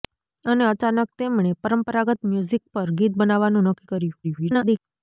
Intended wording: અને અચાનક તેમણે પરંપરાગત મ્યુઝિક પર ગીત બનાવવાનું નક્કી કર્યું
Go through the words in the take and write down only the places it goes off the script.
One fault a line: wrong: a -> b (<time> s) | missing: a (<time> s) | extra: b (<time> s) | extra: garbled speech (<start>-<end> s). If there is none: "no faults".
extra: garbled speech (4.2-4.8 s)